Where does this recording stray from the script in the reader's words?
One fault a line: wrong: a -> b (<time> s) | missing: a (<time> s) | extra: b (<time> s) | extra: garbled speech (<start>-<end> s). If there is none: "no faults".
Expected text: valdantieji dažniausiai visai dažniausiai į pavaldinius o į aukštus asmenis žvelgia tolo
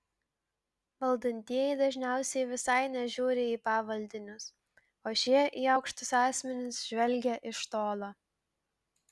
wrong: dažniausiai -> nežiūri (3.0 s)
extra: šie (5.2 s)
extra: iš (7.5 s)